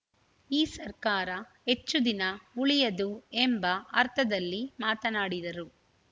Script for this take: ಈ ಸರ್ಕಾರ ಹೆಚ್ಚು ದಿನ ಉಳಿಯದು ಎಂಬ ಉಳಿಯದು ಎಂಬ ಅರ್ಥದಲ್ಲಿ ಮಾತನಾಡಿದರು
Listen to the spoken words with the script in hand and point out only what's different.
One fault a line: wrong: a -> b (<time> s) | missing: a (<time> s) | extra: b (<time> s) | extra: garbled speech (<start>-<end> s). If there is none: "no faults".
missing: ಉಳಿಯದು ಎಂಬ (3.6 s)